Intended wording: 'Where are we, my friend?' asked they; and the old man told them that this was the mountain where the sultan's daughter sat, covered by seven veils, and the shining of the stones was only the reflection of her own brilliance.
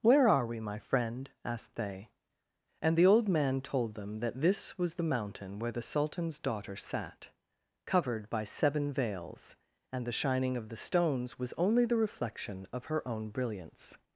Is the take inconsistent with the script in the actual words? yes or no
no